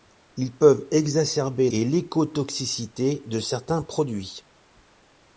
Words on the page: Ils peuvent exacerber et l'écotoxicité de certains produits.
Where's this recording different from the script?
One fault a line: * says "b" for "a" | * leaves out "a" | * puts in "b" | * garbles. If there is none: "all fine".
all fine